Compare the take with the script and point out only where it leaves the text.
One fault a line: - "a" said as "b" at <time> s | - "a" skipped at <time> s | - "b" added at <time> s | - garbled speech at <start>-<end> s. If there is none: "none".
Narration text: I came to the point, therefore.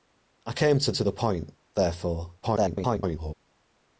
- "to" added at 0.9 s
- garbled speech at 2.4-3.3 s